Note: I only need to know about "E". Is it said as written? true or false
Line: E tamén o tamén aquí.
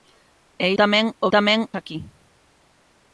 true